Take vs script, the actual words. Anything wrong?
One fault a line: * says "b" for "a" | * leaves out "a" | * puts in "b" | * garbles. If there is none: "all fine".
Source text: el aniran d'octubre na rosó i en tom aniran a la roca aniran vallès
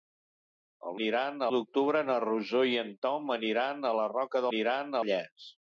all fine